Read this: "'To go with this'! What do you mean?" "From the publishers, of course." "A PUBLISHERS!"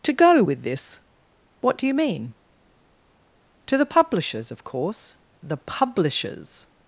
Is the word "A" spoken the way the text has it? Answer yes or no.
no